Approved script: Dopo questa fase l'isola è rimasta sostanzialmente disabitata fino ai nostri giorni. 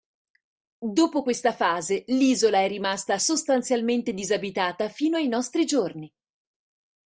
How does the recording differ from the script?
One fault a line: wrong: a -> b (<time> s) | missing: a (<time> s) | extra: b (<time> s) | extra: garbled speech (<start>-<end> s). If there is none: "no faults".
no faults